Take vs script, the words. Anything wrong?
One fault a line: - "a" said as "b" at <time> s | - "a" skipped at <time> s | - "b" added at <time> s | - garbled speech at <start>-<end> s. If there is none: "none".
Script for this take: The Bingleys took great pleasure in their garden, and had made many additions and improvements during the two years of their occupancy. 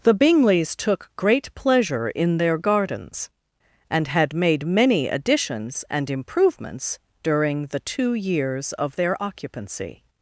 - "garden" said as "gardens" at 2.6 s